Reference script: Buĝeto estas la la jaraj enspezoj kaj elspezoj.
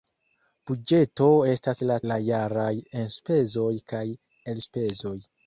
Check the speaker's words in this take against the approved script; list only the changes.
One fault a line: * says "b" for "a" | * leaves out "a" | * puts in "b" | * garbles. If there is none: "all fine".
all fine